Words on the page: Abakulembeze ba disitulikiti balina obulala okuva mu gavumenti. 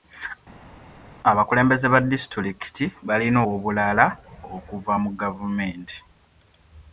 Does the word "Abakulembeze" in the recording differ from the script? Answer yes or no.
no